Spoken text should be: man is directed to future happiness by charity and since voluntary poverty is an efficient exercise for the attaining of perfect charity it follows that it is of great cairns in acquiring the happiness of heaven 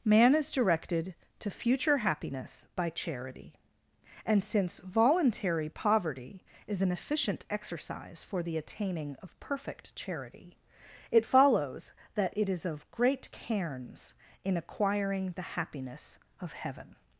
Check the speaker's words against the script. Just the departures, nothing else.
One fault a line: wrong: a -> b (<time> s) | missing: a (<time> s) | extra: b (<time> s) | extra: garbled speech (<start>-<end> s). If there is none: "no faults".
no faults